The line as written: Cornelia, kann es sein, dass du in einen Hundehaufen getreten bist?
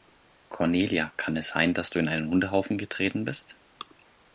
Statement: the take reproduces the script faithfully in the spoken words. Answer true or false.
true